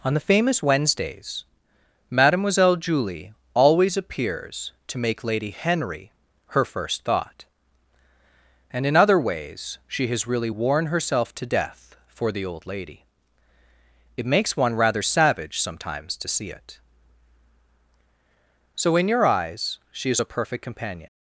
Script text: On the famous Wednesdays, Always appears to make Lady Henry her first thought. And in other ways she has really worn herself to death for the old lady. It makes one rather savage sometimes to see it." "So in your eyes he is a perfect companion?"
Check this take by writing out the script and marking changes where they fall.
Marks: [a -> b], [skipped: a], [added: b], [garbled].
On the famous Wednesdays, [added: Mademoiselle Julie] Always appears to make Lady Henry her first thought. And in other ways she has really worn herself to death for the old lady. It makes one rather savage sometimes to see it." "So in your eyes [he -> she] is a perfect companion?"